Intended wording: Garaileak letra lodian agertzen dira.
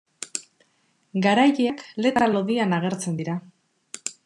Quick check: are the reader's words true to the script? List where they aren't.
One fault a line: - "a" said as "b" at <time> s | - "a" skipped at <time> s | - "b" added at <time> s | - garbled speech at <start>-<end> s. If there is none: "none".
none